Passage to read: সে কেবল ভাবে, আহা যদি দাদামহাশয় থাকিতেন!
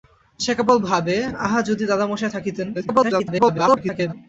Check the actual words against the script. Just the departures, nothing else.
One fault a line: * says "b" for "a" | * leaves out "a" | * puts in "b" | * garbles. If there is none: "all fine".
* garbles